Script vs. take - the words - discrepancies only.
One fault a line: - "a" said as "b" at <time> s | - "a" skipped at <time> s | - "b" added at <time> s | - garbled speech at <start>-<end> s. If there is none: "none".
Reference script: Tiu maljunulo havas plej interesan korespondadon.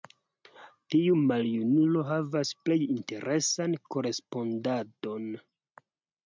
none